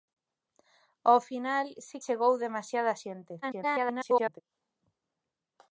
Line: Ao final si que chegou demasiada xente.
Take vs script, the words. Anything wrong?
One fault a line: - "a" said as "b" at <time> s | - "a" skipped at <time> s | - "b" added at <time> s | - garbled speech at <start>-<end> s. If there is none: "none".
- "que" skipped at 2.0 s
- garbled speech at 3.4-4.4 s